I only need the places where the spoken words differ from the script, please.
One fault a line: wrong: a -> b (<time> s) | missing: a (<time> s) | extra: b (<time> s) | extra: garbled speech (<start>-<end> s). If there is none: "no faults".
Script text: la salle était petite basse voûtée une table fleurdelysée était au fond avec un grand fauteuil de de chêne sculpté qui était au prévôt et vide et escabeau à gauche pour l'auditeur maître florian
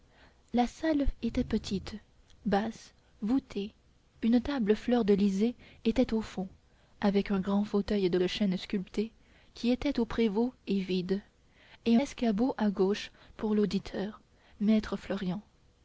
no faults